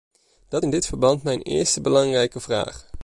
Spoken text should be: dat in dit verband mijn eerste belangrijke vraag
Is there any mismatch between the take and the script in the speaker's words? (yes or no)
no